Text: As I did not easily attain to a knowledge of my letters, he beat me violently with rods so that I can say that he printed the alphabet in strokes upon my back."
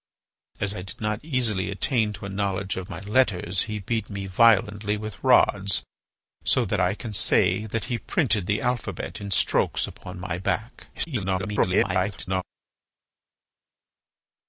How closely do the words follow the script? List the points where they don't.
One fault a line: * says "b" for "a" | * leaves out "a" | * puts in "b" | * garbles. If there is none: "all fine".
* garbles